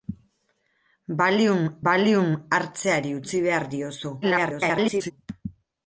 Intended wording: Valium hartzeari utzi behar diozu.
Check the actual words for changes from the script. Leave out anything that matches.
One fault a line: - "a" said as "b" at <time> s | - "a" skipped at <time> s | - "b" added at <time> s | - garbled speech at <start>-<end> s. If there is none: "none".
- "valium" added at 1.9 s
- garbled speech at 4.2-5.1 s